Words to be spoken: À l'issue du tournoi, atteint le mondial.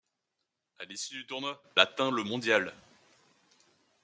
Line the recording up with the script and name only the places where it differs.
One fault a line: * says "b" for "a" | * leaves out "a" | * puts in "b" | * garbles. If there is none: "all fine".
all fine